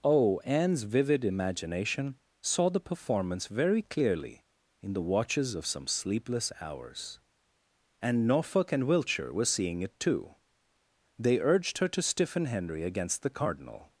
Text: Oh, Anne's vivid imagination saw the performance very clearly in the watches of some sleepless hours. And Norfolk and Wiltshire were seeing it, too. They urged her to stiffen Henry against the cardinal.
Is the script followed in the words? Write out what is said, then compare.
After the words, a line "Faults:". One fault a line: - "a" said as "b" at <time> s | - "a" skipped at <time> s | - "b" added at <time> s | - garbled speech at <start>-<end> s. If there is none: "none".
Oh, Anne's vivid imagination saw the performance very clearly in the watches of some sleepless hours. And Norfolk and Wiltshire were seeing it, too. They urged her to stiffen Henry against the cardinal.
Faults:
none